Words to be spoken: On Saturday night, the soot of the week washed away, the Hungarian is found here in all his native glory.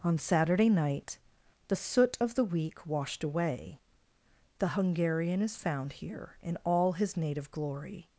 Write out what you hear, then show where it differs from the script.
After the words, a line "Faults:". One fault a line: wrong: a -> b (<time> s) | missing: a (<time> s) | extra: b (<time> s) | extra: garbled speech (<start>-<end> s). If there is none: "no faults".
On Saturday night, the soot of the week washed away, the Hungarian is found here in all his native glory.
Faults:
no faults